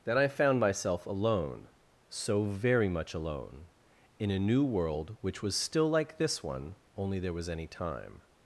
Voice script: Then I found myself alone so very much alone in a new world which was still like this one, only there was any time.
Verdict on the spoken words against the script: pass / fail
pass